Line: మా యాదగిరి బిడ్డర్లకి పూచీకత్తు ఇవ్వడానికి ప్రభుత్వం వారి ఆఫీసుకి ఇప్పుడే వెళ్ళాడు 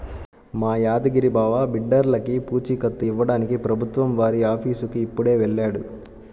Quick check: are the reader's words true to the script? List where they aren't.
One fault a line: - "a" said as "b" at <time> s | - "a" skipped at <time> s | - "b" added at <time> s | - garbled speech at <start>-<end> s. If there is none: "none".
- "బావ" added at 1.3 s